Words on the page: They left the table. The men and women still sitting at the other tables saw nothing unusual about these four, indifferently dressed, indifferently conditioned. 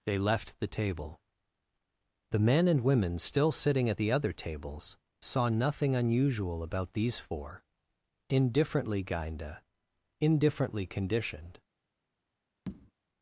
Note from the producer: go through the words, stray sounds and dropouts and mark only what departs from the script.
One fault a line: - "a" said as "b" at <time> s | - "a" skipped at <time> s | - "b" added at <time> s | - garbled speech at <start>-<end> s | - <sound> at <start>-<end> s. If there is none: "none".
- "dressed" said as "gainda" at 9.0 s
- tap at 12.7-12.9 s